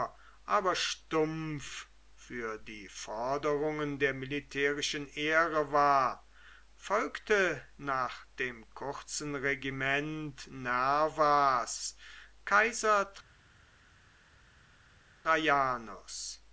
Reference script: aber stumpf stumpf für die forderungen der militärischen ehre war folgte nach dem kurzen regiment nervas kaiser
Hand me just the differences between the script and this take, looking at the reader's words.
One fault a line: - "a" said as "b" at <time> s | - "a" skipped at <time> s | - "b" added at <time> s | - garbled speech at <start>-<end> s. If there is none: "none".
- "stumpf" skipped at 1.9 s